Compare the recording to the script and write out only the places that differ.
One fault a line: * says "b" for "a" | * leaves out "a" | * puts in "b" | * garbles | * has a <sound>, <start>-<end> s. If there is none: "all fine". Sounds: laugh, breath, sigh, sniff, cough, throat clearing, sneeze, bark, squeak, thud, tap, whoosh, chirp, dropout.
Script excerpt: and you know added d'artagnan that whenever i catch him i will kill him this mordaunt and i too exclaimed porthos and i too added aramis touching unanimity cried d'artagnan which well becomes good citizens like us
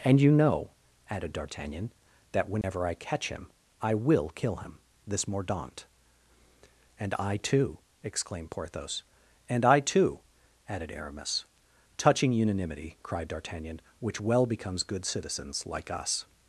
* has a dropout, 2.6-2.6 s